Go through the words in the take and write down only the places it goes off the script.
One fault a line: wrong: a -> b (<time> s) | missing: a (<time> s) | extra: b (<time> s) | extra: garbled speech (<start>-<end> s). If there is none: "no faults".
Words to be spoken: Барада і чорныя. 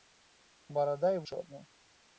no faults